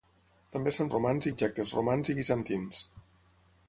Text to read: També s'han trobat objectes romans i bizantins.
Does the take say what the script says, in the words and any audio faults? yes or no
no